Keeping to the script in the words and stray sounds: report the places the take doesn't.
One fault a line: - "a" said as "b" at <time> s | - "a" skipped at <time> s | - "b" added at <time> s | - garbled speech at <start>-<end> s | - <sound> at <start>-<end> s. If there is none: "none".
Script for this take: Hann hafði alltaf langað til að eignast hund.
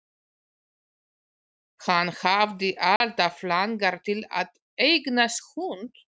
- dropout at 3.0-3.0 s